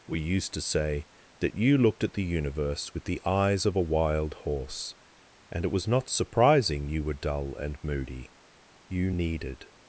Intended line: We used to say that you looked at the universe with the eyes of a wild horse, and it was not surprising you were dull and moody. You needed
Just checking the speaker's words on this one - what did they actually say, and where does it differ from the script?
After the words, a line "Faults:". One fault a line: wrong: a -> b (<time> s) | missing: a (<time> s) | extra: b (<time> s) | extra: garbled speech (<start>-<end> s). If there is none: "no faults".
We used to say that you looked at the universe with the eyes of a wild horse, and it was not surprising you were dull and moody. You needed
Faults:
no faults